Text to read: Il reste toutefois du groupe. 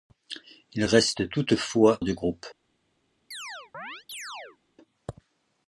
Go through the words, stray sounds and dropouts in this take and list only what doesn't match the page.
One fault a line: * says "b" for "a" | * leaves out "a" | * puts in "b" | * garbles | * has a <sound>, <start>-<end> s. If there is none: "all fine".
* has a chirp, 3.3-4.6 s